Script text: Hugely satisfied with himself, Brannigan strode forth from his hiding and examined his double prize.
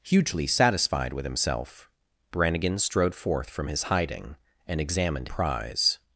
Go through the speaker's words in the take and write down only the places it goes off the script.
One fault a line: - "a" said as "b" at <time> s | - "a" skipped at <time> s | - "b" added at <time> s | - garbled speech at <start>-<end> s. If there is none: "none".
- "his double" skipped at 5.3 s